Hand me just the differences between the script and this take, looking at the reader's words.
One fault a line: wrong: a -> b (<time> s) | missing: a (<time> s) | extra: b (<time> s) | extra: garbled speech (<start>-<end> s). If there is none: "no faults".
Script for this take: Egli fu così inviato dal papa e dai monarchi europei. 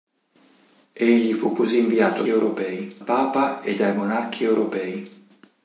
wrong: dal -> europei (2.3 s)